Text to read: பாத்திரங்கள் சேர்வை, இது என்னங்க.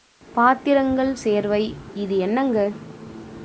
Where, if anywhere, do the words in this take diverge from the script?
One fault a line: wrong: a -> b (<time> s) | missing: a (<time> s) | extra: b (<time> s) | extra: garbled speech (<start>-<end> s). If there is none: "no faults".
no faults